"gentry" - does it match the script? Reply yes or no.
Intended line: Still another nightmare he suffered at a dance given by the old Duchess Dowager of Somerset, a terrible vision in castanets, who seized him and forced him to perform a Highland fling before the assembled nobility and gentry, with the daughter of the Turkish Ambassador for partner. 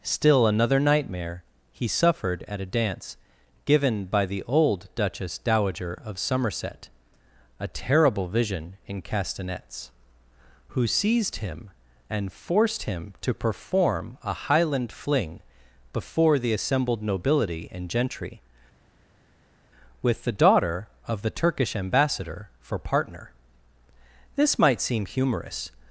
yes